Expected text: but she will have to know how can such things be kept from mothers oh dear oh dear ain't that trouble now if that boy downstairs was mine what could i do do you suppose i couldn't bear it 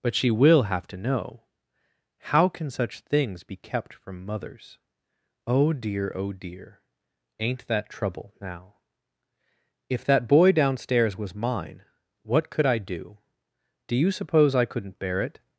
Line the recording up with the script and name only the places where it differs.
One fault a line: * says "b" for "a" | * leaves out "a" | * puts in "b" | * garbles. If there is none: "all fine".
all fine